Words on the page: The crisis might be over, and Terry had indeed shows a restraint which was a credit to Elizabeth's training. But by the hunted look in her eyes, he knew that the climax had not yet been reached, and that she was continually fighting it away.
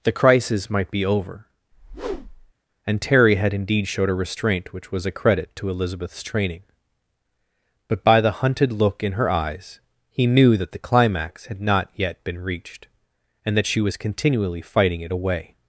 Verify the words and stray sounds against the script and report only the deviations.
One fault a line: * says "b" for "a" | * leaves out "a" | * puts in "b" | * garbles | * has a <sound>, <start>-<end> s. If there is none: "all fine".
* has a whoosh, 1.7-2.5 s
* says "showed" for "shows"